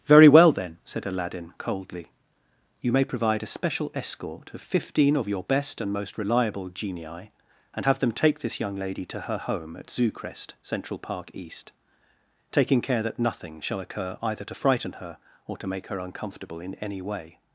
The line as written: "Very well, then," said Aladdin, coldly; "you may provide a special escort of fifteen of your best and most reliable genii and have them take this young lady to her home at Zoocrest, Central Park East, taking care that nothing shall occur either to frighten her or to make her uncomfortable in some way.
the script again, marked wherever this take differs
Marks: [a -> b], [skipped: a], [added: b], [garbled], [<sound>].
"Very well, then," said Aladdin, coldly; "you may provide a special escort of fifteen of your best and most reliable genii and have them take this young lady to her home at Zoocrest, Central Park East, taking care that nothing shall occur either to frighten her or to make her uncomfortable in [some -> any] way.